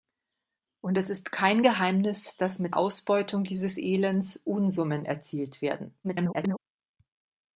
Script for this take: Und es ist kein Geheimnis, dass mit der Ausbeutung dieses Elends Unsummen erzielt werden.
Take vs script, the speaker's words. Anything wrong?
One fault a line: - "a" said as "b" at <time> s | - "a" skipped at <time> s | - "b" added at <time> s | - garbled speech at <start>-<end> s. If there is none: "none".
- "der" skipped at 2.8 s
- garbled speech at 6.0-6.6 s